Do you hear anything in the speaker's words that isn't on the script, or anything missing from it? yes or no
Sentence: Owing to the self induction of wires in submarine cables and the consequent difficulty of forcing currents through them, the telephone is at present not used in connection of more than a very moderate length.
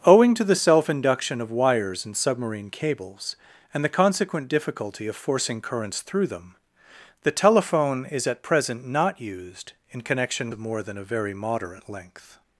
no